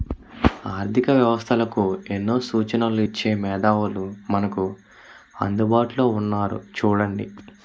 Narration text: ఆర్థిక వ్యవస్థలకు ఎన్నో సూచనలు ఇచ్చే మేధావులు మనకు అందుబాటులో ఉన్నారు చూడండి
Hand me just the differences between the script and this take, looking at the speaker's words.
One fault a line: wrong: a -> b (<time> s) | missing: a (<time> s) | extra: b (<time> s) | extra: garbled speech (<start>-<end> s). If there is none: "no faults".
no faults